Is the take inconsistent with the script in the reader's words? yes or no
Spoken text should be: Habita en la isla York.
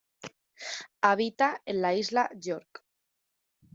no